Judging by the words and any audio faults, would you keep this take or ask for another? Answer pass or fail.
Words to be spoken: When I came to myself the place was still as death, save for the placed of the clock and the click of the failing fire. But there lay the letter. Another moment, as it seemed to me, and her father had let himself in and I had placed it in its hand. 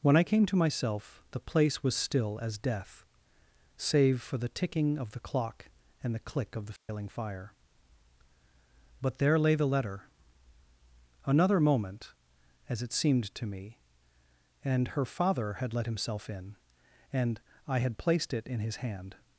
fail